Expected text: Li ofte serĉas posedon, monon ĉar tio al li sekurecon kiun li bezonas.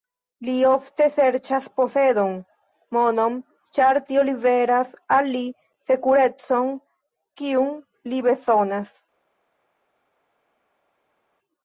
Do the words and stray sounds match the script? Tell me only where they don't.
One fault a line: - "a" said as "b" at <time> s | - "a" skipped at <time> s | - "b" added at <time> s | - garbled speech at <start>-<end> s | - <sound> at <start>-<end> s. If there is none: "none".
- "liveras" added at 4.3 s